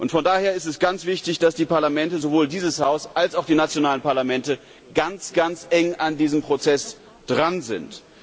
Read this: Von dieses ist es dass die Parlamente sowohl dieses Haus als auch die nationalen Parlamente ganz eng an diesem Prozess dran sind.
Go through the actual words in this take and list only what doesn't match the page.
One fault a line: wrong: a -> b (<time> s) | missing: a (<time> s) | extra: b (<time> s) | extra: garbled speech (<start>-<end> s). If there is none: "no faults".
wrong: dieses -> daher (0.2 s)
extra: ganz wichtig (0.8 s)